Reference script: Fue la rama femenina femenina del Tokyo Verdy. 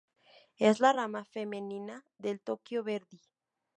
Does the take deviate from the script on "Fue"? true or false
true